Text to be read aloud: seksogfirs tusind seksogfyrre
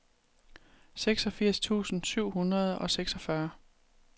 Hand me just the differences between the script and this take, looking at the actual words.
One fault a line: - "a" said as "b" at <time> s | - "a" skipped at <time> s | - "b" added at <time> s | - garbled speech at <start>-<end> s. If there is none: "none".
- "syv hundrede og" added at 2.0 s